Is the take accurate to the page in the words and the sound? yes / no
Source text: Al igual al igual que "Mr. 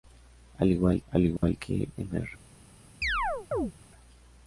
no